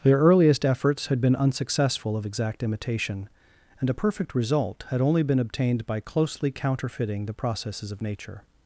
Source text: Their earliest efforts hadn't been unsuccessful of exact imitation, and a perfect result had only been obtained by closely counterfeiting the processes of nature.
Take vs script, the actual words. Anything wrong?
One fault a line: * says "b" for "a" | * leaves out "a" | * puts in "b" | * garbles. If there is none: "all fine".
* says "had" for "hadn't"